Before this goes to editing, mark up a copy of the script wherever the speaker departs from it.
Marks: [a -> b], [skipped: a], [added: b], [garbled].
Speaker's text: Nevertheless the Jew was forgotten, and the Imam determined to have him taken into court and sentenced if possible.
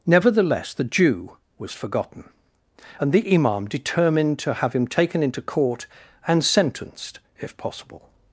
Nevertheless the Jew was forgotten, and the Imam determined to have him taken into court and sentenced if possible.